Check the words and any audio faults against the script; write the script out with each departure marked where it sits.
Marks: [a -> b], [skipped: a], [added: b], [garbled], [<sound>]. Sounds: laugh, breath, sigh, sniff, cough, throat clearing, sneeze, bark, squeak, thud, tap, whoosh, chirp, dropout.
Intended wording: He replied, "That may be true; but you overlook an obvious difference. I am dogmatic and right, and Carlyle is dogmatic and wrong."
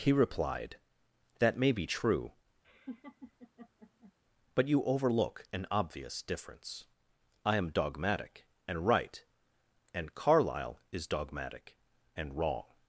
He replied, "That may be true; [laugh] but you overlook an obvious difference. I am dogmatic and right, and Carlyle is dogmatic and wrong."